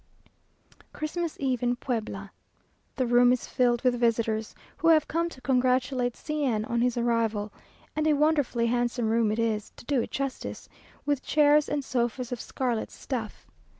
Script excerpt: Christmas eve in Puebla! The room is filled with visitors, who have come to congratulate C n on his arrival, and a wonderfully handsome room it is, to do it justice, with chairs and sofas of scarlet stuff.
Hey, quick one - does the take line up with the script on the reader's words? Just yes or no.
yes